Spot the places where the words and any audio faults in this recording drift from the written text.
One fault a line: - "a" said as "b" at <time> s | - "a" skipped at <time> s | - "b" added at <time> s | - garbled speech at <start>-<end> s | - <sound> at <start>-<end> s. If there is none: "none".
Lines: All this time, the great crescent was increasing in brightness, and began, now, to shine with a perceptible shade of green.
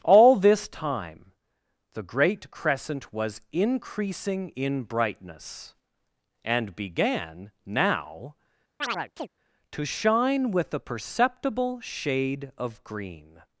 - chirp at 8.8-9.3 s